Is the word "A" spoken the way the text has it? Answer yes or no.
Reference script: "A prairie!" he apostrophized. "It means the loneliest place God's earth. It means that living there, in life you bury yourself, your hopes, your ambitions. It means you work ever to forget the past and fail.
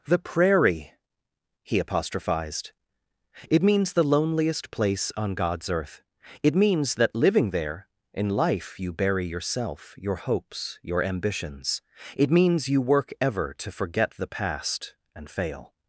no